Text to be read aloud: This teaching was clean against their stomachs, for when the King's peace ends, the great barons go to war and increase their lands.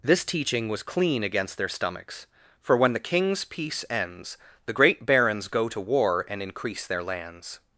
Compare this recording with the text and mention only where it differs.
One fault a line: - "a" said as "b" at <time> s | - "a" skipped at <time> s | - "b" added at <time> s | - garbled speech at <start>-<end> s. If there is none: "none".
none